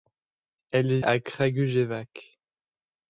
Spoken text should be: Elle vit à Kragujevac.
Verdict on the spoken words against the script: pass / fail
fail